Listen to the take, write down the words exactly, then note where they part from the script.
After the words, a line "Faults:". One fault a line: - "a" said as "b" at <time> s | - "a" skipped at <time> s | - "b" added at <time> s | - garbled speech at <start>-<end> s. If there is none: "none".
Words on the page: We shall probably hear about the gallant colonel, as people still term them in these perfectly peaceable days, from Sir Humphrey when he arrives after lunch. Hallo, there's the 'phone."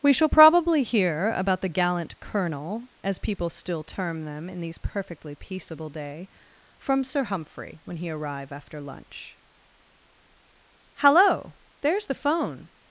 We shall probably hear about the gallant colonel, as people still term them in these perfectly peaceable day, from Sir Humphrey when he arrive after lunch. Hallo, there's the 'phone."
Faults:
- "days" said as "day" at 5.9 s
- "arrives" said as "arrive" at 8.1 s